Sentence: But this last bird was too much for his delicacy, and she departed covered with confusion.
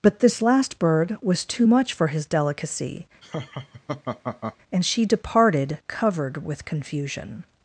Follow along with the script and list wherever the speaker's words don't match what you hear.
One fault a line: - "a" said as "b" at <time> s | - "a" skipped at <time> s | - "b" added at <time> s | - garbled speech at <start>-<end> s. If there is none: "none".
none